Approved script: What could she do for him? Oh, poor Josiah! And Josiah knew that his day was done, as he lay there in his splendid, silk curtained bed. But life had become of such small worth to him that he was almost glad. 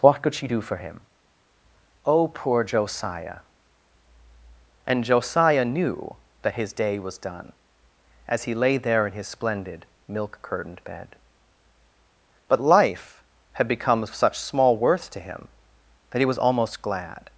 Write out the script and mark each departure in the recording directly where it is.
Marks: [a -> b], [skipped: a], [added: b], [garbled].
What could she do for him? Oh, poor Josiah! And Josiah knew that his day was done, as he lay there in his splendid, [silk -> milk] curtained bed. But life had become of such small worth to him that he was almost glad.